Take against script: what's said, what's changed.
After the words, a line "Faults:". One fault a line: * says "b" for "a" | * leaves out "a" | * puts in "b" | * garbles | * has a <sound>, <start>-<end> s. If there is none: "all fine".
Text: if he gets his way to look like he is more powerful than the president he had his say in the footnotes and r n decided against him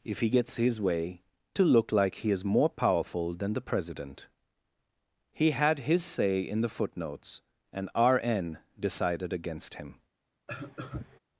if he gets his way to look like he is more powerful than the president he had his say in the footnotes and r n decided against him
Faults:
* has a cough, 10.5-11.2 s